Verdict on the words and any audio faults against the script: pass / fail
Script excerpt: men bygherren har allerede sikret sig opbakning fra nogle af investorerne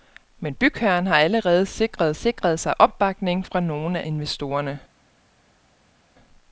fail